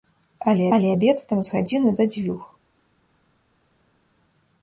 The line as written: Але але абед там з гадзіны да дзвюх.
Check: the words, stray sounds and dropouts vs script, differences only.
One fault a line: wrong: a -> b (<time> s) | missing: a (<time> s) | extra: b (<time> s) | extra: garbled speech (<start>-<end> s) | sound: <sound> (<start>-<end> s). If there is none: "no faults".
no faults